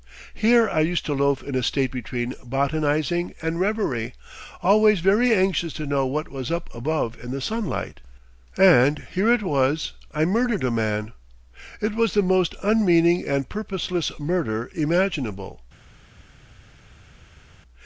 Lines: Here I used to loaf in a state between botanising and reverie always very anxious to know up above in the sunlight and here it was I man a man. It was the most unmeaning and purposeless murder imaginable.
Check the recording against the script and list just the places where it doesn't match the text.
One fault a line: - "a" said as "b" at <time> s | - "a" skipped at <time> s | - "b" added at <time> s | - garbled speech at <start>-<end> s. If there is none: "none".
- "what was" added at 6.1 s
- "man" said as "murdered" at 10.2 s